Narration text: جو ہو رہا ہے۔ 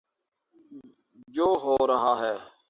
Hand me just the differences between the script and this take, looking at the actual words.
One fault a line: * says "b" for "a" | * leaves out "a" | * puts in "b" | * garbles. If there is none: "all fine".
all fine